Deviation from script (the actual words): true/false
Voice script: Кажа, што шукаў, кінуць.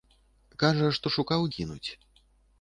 false